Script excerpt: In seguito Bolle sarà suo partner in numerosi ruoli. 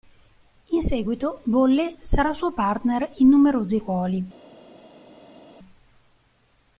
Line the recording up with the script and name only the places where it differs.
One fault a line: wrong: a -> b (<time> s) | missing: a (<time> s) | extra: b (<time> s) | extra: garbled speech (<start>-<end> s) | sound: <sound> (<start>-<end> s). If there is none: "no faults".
no faults